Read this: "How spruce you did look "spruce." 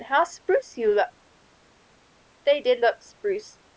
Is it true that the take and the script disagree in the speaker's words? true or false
true